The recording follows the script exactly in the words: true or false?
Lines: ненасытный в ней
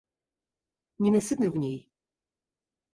true